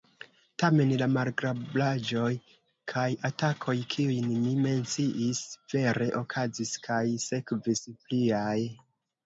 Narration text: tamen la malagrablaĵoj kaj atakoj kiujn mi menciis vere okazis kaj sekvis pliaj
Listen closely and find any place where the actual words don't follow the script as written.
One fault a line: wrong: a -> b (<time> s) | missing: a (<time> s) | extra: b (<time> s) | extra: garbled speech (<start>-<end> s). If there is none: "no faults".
no faults